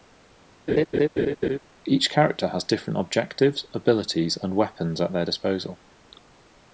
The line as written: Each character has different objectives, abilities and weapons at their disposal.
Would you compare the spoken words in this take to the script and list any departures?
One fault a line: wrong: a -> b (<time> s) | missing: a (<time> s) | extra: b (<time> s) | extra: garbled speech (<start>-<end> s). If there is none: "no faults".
no faults